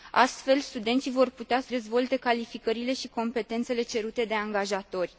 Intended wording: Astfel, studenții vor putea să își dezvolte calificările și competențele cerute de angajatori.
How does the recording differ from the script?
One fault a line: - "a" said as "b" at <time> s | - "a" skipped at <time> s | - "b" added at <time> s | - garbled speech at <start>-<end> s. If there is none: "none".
- "își" skipped at 1.7 s